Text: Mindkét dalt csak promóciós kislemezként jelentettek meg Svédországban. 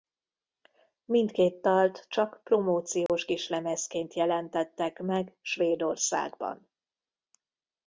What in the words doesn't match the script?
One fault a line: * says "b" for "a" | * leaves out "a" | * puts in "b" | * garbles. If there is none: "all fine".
all fine